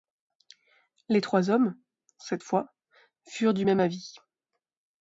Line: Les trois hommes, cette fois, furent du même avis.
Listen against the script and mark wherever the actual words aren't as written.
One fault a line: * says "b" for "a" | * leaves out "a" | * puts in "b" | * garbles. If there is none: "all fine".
all fine